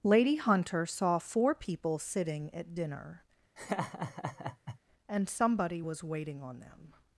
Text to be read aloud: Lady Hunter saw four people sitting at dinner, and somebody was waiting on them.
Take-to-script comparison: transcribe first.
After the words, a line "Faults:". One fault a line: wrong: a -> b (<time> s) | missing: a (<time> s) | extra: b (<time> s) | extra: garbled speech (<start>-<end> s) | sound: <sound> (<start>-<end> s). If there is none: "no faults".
Lady Hunter saw four people sitting at dinner, and somebody was waiting on them.
Faults:
sound: laugh (3.6-4.8 s)